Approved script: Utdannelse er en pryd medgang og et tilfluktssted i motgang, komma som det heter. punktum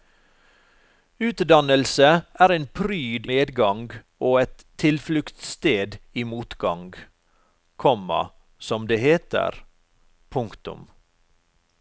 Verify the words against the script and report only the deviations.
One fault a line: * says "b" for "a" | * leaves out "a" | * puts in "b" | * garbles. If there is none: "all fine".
all fine